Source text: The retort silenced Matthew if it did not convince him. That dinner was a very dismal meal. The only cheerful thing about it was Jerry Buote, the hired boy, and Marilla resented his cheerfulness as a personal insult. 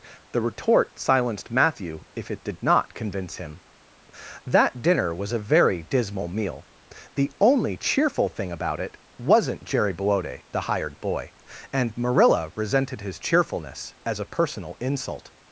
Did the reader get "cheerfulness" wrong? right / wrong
right